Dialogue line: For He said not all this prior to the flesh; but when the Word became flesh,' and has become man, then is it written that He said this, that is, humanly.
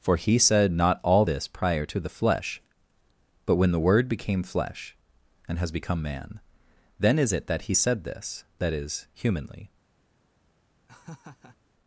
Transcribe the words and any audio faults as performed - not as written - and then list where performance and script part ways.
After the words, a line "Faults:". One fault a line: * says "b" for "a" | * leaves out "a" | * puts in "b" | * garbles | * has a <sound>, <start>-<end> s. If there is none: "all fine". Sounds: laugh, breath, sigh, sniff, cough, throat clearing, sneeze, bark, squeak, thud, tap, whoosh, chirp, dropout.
For He said not all this prior to the flesh; but when the Word became flesh,' and has become man, then is it that He said this, that is, humanly.
Faults:
* leaves out "written"
* has a laugh, 10.9-11.6 s